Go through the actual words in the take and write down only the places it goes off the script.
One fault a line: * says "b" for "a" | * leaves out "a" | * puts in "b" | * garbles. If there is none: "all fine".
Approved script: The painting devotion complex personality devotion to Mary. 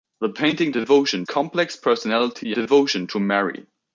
all fine